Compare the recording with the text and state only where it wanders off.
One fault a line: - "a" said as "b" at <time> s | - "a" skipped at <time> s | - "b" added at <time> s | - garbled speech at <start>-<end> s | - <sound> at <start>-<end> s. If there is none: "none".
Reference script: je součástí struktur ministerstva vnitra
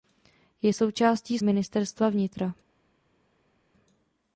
- "struktur" skipped at 1.4 s